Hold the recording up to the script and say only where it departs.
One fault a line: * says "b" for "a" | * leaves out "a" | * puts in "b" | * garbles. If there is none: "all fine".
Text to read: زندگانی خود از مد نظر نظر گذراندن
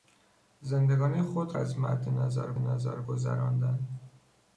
all fine